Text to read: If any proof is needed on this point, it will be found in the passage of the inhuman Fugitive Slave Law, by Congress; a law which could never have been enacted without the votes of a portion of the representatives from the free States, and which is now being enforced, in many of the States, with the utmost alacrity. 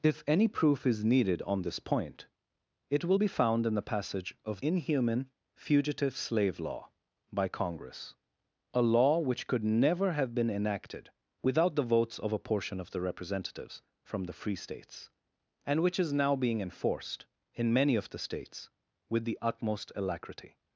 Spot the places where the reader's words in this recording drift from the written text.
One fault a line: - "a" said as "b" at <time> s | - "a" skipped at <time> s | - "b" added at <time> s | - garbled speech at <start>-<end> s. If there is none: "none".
- "the" skipped at 4.6 s